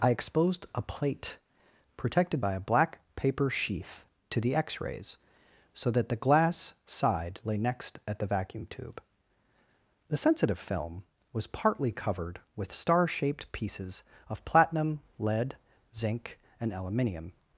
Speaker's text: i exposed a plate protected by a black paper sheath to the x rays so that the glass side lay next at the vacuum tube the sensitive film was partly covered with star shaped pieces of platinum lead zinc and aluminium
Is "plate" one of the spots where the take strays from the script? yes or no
no